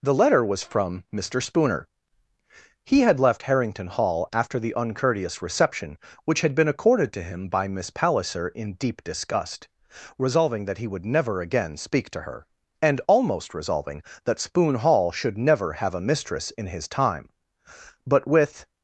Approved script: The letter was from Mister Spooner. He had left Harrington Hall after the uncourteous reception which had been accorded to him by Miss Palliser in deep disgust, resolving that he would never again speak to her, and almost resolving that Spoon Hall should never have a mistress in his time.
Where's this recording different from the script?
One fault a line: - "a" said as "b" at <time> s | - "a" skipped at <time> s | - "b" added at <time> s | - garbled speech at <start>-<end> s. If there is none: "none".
- "But with" added at 18.1 s